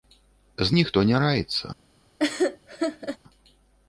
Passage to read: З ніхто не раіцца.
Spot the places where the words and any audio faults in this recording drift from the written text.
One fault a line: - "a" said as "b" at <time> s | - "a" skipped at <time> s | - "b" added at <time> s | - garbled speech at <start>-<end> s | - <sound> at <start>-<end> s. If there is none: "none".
- laugh at 2.2-3.2 s